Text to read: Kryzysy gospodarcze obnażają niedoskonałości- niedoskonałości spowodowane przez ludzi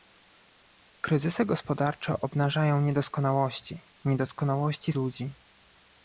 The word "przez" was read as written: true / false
false